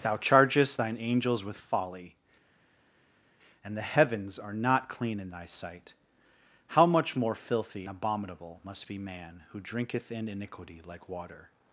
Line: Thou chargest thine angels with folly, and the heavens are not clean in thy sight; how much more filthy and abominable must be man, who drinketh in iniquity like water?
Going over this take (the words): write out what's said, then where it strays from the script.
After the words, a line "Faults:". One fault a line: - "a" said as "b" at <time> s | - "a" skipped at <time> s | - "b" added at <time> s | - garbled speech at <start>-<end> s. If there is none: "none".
Thou chargest thine angels with folly, and the heavens are not clean in thy sight; how much more filthy abominable must be man, who drinketh in iniquity like water?
Faults:
- "and" skipped at 7.9 s